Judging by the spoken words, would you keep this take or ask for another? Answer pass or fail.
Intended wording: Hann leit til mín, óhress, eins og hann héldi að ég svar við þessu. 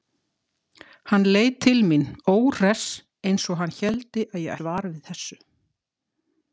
pass